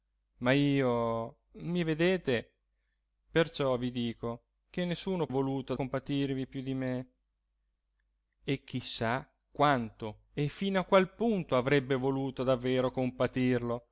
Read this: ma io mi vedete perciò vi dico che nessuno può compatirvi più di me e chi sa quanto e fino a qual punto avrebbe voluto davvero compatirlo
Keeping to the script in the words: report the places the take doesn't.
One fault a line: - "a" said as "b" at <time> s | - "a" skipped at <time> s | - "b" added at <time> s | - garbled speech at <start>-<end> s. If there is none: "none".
- "può" said as "voluto" at 5.3 s